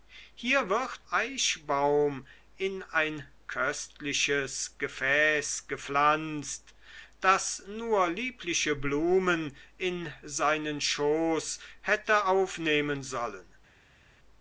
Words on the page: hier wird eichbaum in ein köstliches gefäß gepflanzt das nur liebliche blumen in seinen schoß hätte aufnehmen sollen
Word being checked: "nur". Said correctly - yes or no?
yes